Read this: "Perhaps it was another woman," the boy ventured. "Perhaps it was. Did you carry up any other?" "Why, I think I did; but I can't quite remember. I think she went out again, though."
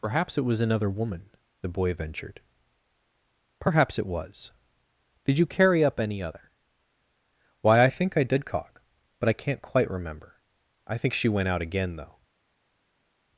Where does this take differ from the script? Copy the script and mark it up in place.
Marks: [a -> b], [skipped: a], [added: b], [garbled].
"Perhaps it was another woman," the boy ventured. "Perhaps it was. Did you carry up any other?" "Why, I think I did; [added: cock] but I can't quite remember. I think she went out again, though."